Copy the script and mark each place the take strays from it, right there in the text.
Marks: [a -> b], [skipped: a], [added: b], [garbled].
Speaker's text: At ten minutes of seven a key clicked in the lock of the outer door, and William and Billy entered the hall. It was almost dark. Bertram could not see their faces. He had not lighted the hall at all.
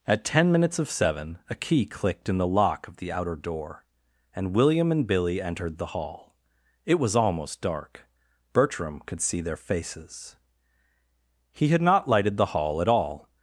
At ten minutes of seven a key clicked in the lock of the outer door, and William and Billy entered the hall. It was almost dark. Bertram could [skipped: not] see their faces. He had not lighted the hall at all.